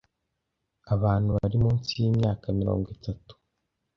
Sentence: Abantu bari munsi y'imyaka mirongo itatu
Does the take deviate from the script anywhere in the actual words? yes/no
no